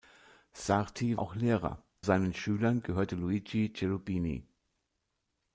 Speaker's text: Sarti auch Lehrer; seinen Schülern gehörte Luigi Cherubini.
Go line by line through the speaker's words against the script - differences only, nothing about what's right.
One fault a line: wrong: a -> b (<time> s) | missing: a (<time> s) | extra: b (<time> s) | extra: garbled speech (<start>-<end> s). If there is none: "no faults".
no faults